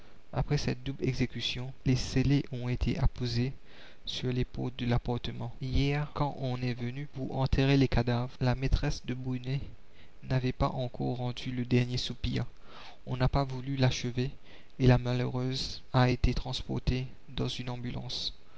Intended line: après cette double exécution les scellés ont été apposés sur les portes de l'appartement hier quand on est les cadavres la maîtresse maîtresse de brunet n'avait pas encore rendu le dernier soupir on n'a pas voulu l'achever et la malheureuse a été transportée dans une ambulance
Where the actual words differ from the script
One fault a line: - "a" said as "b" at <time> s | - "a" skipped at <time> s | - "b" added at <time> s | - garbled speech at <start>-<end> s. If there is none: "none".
- "venu pour enterrer" added at 6.7 s
- "maîtresse" skipped at 9.1 s